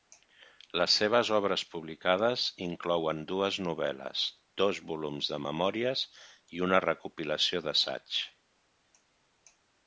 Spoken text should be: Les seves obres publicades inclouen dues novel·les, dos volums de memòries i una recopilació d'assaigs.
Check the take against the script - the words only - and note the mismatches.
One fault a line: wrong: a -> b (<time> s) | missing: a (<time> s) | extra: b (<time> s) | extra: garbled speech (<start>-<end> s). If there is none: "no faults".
no faults